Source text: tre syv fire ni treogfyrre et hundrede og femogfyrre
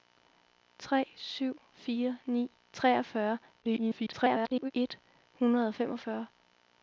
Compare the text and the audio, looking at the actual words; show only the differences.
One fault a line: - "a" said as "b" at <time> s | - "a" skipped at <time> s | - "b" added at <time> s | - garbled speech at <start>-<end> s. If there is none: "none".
- garbled speech at 3.6-4.7 s